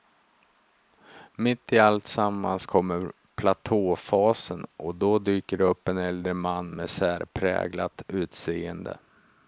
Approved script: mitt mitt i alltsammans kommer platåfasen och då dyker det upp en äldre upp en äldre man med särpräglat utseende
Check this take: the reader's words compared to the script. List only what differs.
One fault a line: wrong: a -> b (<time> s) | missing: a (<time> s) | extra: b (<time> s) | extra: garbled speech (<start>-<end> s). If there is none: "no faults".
missing: mitt (1.7 s)
missing: upp en äldre (6.3 s)